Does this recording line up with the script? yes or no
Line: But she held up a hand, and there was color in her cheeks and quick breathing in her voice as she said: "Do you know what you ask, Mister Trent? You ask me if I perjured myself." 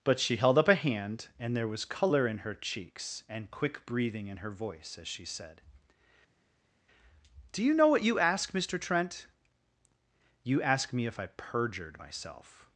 yes